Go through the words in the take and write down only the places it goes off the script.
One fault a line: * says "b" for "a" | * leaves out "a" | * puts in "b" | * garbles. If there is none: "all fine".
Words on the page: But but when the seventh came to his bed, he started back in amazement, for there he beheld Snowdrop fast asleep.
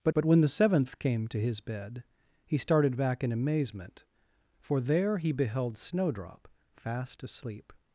all fine